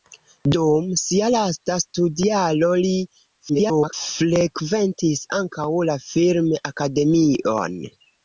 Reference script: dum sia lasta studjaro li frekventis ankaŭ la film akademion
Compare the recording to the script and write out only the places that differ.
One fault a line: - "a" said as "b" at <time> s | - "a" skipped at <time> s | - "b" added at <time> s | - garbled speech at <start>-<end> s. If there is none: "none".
- garbled speech at 3.5-3.9 s